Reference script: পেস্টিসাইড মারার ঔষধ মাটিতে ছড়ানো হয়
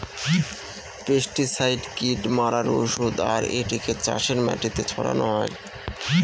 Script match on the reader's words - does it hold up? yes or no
no